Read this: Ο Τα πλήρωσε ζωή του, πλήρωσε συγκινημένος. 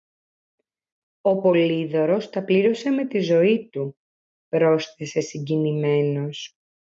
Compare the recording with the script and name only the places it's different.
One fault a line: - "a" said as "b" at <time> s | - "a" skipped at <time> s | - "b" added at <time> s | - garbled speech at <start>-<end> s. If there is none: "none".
- "Πολύδωρος" added at 1.4 s
- "με τη" added at 2.9 s
- "πλήρωσε" said as "πρόσθεσε" at 4.5 s